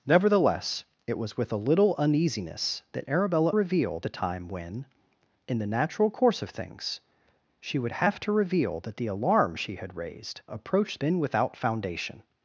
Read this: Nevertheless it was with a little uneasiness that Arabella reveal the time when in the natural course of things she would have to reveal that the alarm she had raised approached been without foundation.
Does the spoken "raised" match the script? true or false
true